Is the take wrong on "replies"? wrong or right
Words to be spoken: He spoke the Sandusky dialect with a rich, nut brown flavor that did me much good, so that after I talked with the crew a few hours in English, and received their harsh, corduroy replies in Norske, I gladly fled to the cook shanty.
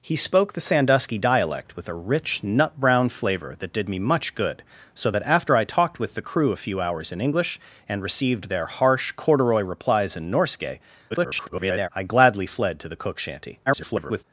right